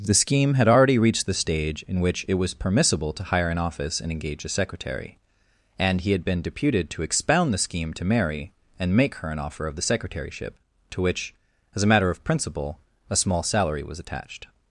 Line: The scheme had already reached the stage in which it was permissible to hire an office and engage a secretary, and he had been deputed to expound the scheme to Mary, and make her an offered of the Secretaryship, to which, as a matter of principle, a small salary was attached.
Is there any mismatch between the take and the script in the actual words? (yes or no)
yes